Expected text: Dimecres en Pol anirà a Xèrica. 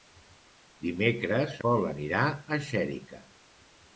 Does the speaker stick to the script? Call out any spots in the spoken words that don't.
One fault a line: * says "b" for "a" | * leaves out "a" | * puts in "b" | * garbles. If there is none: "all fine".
* leaves out "en"